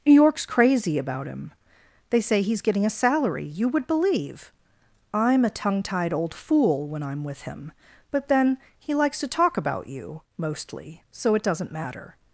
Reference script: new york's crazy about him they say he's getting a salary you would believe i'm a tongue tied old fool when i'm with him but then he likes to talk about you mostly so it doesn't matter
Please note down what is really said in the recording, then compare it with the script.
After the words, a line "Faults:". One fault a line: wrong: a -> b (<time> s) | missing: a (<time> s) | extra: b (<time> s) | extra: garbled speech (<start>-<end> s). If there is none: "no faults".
new york's crazy about him they say he's getting a salary you would believe i'm a tongue tied old fool when i'm with him but then he likes to talk about you mostly so it doesn't matter
Faults:
no faults